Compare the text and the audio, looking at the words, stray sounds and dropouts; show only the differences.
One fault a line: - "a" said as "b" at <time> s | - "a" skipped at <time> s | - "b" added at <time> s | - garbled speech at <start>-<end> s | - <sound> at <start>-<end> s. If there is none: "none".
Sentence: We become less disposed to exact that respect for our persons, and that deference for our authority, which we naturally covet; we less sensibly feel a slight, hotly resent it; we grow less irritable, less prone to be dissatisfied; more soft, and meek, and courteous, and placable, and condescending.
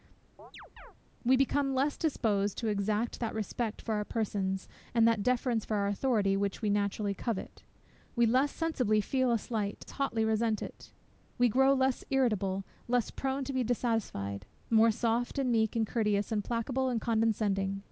- chirp at 0.4-0.9 s